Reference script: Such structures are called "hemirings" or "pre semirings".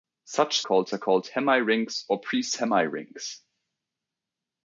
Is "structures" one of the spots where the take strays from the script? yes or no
yes